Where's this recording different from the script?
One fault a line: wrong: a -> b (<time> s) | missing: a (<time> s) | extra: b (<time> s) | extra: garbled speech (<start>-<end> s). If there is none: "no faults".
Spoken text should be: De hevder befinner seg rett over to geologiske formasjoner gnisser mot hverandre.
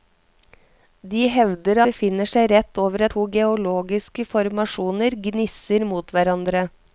no faults